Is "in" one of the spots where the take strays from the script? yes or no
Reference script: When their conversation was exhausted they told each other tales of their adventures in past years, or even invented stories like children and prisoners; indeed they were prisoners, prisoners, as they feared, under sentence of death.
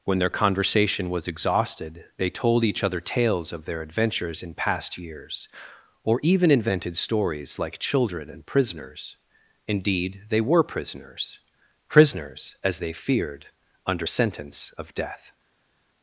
no